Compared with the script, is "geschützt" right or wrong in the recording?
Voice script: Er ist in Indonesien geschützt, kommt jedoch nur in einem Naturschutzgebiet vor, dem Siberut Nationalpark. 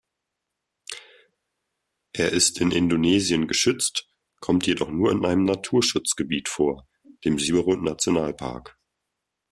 right